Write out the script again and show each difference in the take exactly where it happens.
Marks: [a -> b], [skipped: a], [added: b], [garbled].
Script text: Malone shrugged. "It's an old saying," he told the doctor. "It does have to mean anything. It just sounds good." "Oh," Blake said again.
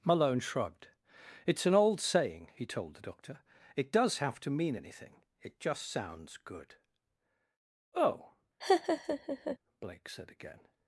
Malone shrugged. "It's an old saying," he told the doctor. "It does have to mean anything. It just sounds good." "Oh," Blake said again.